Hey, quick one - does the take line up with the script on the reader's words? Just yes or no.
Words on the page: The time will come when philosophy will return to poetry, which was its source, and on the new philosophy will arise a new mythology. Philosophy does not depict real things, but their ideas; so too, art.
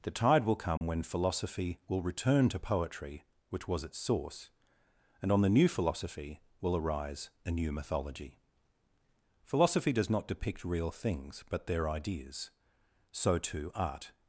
no